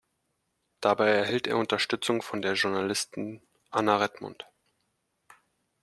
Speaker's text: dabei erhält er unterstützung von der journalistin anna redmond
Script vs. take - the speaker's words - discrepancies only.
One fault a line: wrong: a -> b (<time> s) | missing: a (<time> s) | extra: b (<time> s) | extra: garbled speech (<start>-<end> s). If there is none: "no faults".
no faults